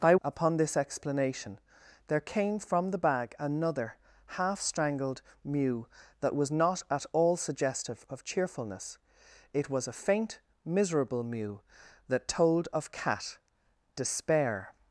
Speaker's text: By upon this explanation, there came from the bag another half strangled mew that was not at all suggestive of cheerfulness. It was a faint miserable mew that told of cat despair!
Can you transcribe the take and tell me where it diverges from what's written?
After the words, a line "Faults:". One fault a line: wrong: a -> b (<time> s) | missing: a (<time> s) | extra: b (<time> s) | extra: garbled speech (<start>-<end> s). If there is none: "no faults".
By upon this explanation, there came from the bag another half strangled mew that was not at all suggestive of cheerfulness. It was a faint miserable mew that told of cat despair!
Faults:
no faults